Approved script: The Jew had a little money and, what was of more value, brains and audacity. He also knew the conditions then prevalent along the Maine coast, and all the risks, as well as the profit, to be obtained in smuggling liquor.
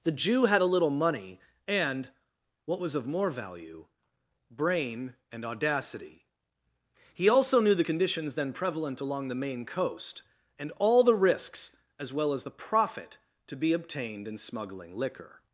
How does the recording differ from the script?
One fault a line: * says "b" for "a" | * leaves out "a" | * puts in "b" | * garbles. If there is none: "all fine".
* says "brain" for "brains"